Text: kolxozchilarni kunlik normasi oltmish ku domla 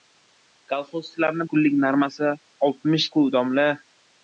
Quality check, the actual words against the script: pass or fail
pass